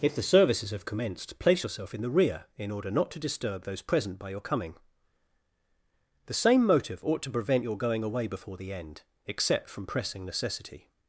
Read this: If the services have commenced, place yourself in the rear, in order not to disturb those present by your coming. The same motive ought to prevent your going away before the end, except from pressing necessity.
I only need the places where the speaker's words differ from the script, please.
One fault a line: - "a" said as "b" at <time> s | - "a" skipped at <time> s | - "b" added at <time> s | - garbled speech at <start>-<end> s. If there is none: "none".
none